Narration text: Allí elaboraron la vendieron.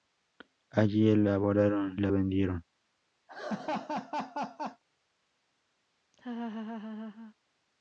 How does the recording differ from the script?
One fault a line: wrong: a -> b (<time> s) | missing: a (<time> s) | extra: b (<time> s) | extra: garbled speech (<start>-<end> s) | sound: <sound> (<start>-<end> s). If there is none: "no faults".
sound: laugh (3.3-4.8 s)
sound: laugh (6.1-7.3 s)